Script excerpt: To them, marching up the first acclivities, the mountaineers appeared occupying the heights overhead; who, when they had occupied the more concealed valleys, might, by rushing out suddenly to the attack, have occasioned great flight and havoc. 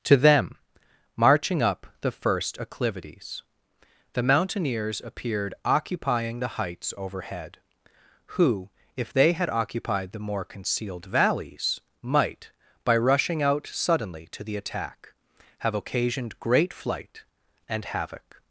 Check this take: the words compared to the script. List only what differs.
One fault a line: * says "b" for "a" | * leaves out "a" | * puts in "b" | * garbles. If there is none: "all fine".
* says "if" for "when"